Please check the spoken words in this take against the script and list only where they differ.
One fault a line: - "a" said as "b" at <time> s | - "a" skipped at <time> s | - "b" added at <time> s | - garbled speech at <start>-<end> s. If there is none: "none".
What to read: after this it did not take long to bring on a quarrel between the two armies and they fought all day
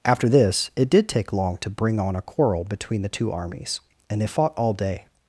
- "not" skipped at 1.1 s